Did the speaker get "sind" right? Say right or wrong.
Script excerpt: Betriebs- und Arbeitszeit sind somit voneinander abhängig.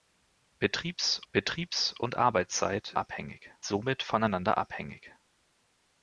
wrong